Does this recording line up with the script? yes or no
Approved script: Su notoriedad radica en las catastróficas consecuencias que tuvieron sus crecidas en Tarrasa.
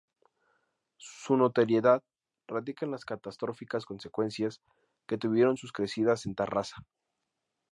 yes